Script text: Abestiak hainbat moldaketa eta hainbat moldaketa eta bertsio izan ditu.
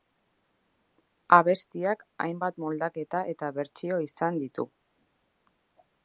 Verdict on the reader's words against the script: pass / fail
fail